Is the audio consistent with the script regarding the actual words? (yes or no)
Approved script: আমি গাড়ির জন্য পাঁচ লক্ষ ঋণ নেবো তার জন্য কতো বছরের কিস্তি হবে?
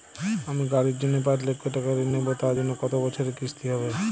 no